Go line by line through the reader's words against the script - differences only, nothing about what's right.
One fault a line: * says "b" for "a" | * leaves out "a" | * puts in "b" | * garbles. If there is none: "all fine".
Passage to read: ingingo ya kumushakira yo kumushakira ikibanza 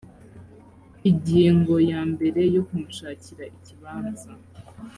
* says "mbere" for "kumushakira"